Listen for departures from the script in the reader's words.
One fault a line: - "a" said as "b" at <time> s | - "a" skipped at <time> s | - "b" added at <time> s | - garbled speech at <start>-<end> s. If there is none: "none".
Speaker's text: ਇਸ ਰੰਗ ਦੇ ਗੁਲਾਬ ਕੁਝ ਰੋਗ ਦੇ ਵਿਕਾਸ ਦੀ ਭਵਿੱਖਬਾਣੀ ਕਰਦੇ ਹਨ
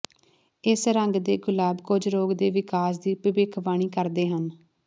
none